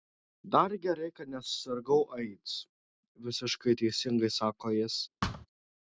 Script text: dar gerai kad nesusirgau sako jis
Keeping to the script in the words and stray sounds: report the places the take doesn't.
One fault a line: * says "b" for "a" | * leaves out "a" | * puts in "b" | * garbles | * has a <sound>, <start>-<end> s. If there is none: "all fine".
* puts in "aids visiškai teisingai"
* has a thud, 5.2-5.5 s